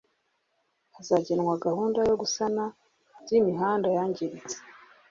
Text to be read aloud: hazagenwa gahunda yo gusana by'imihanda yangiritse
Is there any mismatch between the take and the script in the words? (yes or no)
no